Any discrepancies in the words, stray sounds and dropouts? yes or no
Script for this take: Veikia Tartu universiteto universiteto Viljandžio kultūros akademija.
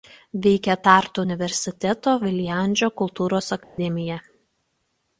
yes